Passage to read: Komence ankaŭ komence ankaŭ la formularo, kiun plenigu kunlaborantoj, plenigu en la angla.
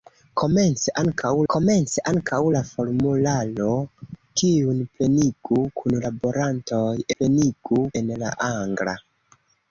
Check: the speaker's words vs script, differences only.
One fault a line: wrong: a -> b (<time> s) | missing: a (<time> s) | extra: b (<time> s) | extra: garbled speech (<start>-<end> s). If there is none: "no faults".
no faults